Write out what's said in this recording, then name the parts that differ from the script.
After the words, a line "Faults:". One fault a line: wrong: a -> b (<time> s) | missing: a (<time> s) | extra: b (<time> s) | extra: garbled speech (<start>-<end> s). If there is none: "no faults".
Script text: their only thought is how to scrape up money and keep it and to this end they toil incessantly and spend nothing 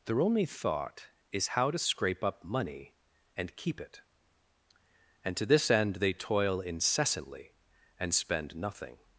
their only thought is how to scrape up money and keep it and to this end they toil incessantly and spend nothing
Faults:
no faults